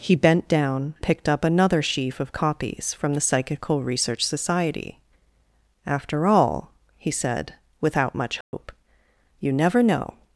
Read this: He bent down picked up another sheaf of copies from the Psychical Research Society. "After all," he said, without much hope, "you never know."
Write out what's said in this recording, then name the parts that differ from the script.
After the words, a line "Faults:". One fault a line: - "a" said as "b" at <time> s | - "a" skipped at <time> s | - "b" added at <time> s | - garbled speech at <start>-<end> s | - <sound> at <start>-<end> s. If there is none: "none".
He bent down picked up another sheaf of copies from the Psychical Research Society. "After all," he said, without much hope, "you never know."
Faults:
- dropout at 8.4-8.5 s